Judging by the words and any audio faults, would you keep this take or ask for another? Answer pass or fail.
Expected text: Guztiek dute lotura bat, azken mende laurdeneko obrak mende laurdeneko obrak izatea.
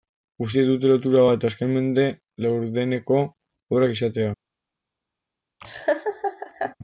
fail